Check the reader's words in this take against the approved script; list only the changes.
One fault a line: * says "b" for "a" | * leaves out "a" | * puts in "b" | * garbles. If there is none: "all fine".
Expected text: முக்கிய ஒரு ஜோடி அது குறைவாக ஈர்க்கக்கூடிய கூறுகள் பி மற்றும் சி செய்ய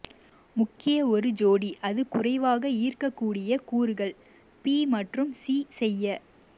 all fine